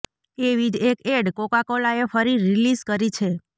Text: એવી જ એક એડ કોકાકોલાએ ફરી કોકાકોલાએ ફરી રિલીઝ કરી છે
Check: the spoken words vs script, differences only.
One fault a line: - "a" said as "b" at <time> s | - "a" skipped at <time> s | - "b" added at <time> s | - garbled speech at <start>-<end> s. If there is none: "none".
- "કોકાકોલાએ ફરી" skipped at 2.4 s